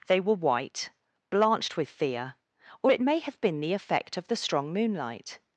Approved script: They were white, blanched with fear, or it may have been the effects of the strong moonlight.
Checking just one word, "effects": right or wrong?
wrong